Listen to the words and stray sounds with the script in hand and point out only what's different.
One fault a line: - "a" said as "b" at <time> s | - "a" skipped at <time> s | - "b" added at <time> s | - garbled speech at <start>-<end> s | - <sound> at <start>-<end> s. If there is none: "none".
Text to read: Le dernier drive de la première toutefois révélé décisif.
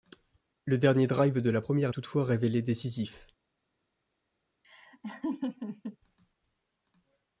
- laugh at 4.6-6.0 s